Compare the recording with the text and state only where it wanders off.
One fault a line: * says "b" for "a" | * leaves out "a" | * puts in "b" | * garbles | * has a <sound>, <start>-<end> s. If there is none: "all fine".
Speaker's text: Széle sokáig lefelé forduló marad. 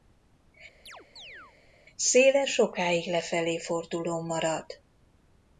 * has a chirp, 0.9-1.6 s